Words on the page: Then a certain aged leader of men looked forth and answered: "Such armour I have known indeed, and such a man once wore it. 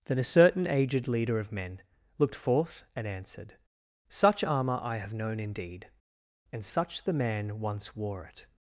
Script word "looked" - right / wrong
right